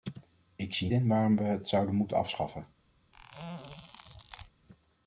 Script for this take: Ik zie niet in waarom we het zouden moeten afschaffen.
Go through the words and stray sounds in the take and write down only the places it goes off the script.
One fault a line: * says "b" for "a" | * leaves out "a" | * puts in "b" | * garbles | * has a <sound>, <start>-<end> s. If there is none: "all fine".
* leaves out "niet"
* has a squeak, 3.1-4.5 s